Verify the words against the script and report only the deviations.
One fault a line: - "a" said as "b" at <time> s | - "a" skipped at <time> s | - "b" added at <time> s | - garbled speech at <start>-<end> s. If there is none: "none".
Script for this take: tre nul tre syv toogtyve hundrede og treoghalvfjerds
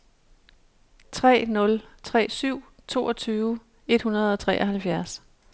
- "et" added at 3.9 s